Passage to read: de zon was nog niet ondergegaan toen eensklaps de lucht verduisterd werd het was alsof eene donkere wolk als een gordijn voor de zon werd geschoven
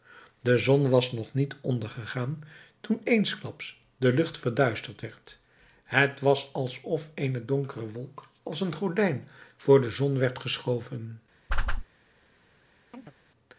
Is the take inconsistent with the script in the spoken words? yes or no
no